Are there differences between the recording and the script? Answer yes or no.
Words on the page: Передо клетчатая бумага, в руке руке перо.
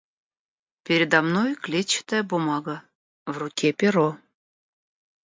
yes